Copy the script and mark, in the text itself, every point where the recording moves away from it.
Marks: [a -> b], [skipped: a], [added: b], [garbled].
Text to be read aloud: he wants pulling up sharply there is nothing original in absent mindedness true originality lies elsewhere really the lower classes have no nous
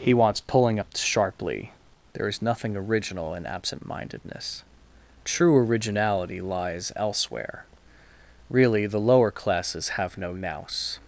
he wants pulling up sharply there is nothing original in absent mindedness true originality lies elsewhere really the lower classes have no nous